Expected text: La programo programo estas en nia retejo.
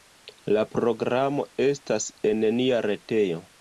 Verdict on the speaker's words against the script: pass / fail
fail